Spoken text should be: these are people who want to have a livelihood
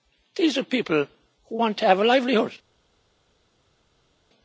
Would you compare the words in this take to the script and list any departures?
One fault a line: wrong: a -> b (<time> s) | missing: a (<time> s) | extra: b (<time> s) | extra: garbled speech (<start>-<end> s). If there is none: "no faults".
no faults